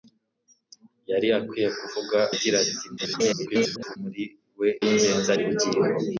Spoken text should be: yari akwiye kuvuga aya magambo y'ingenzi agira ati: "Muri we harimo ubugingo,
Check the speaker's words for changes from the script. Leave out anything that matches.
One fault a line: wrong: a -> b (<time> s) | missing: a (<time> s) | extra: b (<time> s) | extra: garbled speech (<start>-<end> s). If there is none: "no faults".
missing: aya magambo y'ingenzi (2.2 s)
extra: garbled speech (3.0-4.0 s)
wrong: harimo -> y'ingenzi (4.8 s)